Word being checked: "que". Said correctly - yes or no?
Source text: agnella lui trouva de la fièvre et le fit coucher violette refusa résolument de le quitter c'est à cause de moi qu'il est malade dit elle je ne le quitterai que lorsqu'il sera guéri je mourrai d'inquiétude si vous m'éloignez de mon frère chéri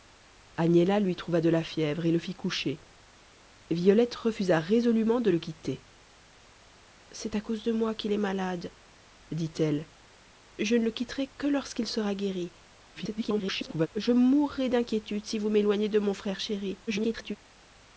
yes